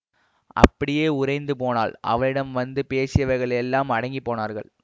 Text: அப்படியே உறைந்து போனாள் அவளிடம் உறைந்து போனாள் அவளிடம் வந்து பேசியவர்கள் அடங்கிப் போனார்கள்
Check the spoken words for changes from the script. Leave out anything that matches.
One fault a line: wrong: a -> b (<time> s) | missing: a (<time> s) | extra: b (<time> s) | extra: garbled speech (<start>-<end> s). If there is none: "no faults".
missing: உறைந்து போனாள் அவளிடம் (2.5 s)
extra: எல்லாம் (3.6 s)